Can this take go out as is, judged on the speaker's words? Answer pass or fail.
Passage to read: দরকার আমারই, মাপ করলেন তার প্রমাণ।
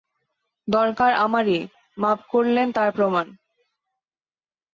pass